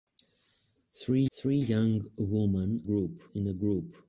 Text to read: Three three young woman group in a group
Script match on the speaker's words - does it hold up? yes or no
yes